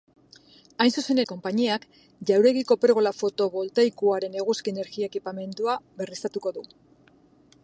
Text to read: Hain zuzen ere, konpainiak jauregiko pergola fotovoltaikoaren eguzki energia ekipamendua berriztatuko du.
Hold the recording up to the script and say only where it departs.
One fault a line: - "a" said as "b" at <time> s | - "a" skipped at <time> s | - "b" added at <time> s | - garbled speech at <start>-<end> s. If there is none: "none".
- "ere" skipped at 1.2 s